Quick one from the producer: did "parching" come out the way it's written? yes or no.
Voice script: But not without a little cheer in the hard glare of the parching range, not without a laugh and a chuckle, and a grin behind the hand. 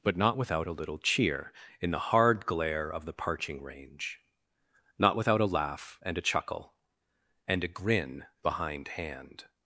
yes